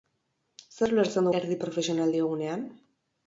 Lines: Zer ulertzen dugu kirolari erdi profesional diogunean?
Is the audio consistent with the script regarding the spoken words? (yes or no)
no